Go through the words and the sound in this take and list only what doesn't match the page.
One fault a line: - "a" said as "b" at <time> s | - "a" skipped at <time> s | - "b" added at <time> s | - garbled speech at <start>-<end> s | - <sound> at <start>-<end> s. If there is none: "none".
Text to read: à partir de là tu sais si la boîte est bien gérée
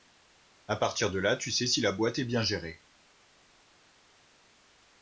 none